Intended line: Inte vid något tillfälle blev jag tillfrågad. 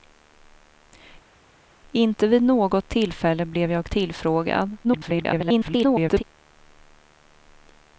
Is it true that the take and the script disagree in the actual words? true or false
true